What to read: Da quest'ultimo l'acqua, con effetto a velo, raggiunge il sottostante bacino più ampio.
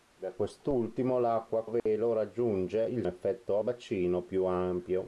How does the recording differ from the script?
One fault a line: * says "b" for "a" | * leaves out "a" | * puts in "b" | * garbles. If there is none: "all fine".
* leaves out "con effetto"
* says "effetto" for "sottostante"